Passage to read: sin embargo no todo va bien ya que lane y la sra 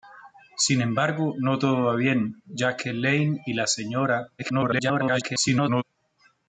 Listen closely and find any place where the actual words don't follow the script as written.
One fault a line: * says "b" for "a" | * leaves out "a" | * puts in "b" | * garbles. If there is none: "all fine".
* garbles